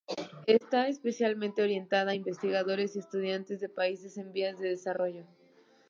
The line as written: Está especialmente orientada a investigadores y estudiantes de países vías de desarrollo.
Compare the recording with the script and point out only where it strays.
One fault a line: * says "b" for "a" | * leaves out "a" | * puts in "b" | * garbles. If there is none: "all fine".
* puts in "en"